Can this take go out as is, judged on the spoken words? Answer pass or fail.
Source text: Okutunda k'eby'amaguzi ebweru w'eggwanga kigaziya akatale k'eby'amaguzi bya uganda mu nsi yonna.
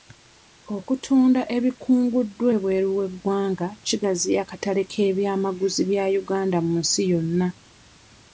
fail